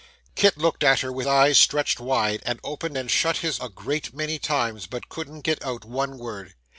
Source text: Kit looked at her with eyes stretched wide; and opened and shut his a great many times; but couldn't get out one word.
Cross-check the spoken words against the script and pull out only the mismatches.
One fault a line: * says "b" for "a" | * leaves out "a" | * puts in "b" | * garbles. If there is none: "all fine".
all fine